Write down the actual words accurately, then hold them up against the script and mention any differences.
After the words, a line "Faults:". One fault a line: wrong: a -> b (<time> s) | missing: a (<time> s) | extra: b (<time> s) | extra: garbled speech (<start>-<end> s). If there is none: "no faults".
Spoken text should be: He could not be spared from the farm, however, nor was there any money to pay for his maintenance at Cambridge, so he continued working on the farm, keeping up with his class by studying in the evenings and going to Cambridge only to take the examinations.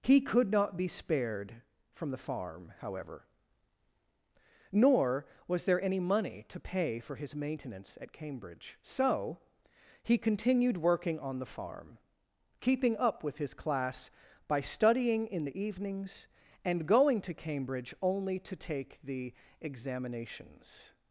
He could not be spared from the farm, however, nor was there any money to pay for his maintenance at Cambridge, so he continued working on the farm, keeping up with his class by studying in the evenings and going to Cambridge only to take the examinations.
Faults:
no faults